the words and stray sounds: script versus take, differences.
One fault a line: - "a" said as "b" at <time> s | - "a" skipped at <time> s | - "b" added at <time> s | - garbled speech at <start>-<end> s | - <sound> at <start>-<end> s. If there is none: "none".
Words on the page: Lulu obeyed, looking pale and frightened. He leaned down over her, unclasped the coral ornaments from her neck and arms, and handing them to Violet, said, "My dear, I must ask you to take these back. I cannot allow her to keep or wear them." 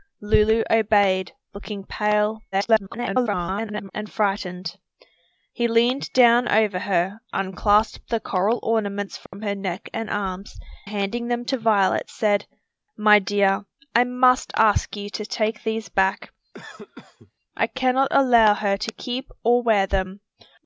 - garbled speech at 2.5-3.9 s
- dropout at 9.3-9.3 s
- "and" skipped at 10.6 s
- cough at 16.5-17.3 s